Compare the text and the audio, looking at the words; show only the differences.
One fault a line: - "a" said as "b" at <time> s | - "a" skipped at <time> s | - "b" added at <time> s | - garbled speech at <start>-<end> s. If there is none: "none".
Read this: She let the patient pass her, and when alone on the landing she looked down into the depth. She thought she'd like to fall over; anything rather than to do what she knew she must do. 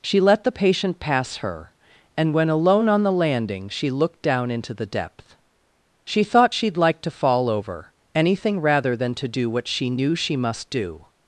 none